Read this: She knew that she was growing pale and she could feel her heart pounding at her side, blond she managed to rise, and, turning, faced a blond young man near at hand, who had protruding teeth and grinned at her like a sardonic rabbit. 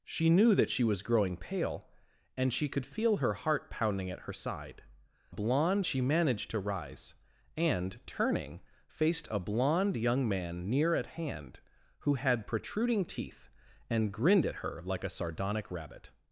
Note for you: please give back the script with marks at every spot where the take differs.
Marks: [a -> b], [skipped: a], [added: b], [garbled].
She knew that she was growing pale and she could feel her heart pounding at her side, blond she managed to rise, and, turning, faced a blond young man near at hand, who had protruding teeth and grinned at her like a sardonic rabbit.